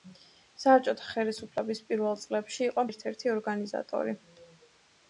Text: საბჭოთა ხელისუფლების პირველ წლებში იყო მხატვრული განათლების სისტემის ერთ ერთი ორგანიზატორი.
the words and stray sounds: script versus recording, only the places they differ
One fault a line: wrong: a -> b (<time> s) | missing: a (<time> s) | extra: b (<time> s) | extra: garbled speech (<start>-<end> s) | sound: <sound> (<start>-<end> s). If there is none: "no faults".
missing: მხატვრული განათლების სისტემის (2.9 s)